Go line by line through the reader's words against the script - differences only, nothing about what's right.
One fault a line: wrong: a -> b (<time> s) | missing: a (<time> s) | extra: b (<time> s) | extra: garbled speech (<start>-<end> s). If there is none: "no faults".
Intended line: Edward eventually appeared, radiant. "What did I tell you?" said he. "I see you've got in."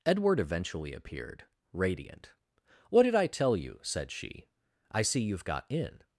wrong: he -> she (4.1 s)